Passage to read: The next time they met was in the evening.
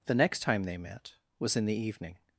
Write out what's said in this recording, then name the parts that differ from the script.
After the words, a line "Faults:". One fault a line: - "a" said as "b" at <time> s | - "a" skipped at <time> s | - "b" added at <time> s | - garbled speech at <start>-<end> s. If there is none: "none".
The next time they met was in the evening.
Faults:
none